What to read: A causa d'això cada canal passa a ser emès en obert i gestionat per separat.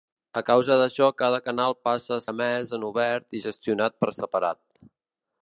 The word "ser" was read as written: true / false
false